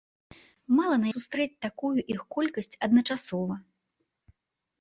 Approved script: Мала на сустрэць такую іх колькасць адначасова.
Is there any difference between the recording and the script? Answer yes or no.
no